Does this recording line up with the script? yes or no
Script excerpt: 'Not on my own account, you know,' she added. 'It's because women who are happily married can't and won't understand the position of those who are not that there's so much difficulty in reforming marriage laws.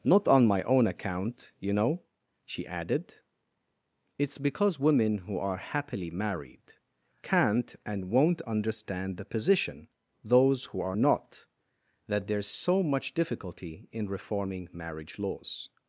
no